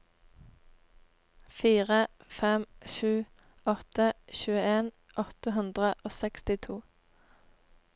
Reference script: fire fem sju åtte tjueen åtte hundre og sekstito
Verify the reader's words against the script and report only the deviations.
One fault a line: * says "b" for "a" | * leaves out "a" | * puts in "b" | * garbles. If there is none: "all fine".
all fine